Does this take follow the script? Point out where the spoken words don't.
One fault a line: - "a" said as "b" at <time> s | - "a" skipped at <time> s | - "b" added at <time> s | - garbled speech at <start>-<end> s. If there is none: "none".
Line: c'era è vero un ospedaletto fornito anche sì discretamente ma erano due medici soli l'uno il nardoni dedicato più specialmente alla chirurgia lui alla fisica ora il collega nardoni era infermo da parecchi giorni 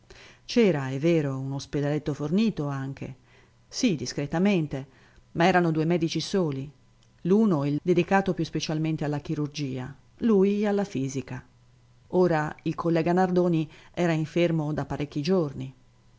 - "nardoni" skipped at 7.8 s